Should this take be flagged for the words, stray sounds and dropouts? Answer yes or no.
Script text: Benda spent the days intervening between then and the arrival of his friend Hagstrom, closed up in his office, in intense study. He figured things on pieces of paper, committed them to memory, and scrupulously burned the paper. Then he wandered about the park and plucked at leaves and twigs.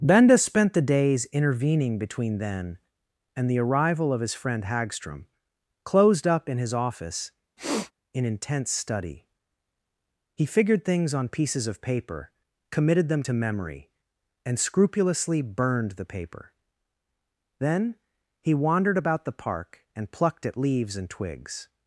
yes